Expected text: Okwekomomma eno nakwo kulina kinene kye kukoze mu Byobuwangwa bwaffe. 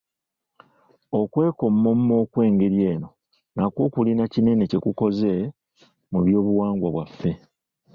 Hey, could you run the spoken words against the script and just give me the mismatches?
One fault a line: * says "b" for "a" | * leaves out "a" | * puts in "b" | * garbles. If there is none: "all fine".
* puts in "okw'engeri"